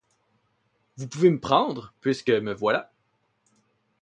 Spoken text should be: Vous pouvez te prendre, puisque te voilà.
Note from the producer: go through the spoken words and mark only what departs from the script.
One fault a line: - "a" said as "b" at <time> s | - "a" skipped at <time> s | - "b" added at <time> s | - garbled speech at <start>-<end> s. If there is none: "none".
- "te" said as "me" at 1.3 s
- "te" said as "me" at 2.3 s